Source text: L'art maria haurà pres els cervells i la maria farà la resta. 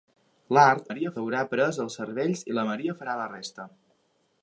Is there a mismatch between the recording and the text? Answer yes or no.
no